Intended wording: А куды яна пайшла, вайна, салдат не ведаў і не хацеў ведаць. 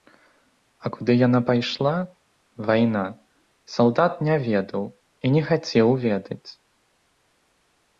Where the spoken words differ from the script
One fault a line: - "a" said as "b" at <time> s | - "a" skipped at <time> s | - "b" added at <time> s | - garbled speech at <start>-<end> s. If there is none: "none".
none